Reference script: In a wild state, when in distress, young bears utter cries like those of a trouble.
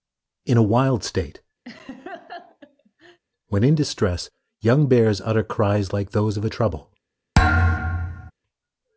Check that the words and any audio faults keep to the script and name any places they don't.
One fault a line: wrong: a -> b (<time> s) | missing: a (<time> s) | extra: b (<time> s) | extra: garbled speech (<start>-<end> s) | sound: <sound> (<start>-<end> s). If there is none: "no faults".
sound: laugh (1.7-3.2 s)
sound: thud (7.3-8.3 s)